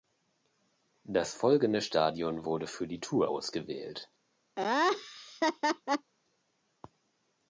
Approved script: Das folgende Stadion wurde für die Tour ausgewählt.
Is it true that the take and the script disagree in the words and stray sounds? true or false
true